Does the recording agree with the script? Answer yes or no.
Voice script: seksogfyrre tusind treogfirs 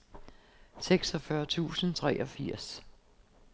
yes